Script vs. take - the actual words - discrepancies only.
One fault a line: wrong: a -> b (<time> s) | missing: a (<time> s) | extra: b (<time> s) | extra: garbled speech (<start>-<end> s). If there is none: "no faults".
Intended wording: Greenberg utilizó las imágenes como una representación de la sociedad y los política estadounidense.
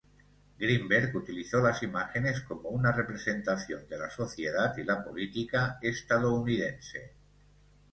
wrong: los -> la (4.9 s)